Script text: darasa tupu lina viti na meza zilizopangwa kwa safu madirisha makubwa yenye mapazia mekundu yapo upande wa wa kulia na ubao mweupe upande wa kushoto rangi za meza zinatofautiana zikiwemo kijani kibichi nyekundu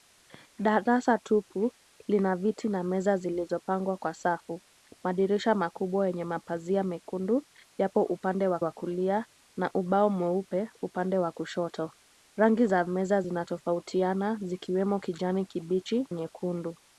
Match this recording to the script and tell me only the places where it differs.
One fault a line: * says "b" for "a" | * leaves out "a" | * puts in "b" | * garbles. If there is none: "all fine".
all fine